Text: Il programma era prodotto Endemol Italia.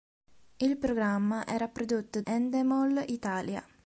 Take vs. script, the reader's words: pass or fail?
pass